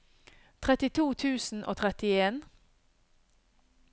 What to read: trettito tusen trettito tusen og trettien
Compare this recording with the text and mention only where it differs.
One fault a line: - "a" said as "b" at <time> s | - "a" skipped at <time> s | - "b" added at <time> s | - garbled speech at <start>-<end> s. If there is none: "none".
- "trettito tusen" skipped at 1.6 s